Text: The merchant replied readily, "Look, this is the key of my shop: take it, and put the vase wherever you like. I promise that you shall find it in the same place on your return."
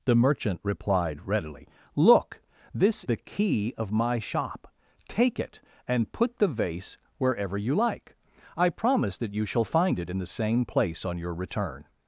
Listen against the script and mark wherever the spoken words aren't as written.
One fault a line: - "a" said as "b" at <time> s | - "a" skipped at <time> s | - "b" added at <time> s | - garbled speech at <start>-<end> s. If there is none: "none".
- "is" skipped at 3.0 s